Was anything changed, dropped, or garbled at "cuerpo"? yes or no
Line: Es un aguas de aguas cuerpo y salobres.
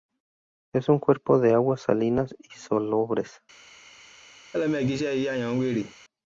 yes